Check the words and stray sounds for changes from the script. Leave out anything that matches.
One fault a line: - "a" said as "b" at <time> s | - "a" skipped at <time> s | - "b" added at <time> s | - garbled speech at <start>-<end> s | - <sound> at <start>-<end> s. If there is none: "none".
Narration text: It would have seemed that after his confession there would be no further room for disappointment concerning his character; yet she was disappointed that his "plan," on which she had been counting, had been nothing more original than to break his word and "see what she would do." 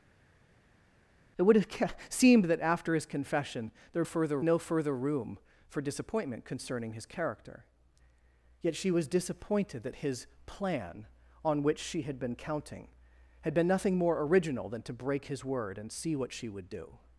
- "would" said as "further" at 4.0 s